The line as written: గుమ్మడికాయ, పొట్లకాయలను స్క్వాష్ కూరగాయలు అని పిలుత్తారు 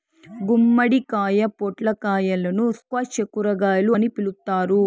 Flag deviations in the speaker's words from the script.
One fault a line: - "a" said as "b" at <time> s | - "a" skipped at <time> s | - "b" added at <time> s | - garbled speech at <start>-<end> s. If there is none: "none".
none